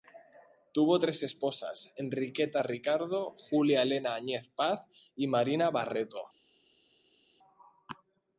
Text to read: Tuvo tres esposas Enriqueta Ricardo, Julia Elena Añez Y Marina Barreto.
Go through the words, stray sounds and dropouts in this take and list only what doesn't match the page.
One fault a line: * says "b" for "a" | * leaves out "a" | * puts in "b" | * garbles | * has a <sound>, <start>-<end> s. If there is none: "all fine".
* puts in "Paz"